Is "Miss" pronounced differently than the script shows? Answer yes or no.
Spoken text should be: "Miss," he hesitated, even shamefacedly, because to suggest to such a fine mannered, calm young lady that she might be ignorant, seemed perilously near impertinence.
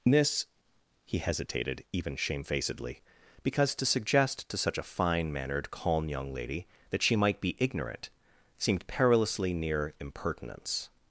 yes